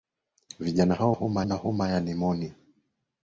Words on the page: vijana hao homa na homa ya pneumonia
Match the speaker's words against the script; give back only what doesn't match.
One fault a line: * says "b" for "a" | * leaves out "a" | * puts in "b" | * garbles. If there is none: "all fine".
all fine